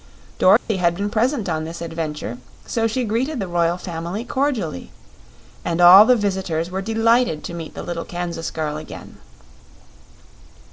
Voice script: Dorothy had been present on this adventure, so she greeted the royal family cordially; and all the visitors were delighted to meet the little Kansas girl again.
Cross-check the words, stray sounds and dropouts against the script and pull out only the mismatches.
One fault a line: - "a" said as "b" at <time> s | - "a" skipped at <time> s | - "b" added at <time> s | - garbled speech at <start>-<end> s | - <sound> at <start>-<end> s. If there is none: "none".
- dropout at 0.6-0.7 s